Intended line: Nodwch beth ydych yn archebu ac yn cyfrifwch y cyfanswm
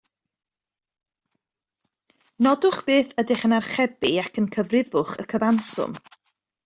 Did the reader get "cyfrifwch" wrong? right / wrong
right